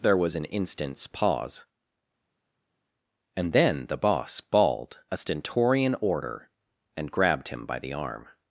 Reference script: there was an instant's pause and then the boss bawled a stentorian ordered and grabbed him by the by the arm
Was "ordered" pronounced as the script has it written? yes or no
no